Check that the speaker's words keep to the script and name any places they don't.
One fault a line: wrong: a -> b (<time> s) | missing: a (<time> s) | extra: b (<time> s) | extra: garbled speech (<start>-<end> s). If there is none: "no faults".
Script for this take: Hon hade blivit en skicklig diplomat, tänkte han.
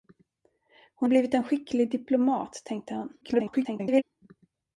missing: hade (1.1 s)
extra: garbled speech (3.2-4.0 s)